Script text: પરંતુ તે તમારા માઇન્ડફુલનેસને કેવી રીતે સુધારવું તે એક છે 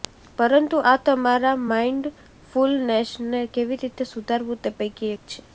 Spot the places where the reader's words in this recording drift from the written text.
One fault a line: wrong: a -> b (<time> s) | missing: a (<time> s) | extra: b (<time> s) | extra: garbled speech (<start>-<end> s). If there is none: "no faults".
wrong: તે -> આ (0.8 s)
extra: પૈકી (4.8 s)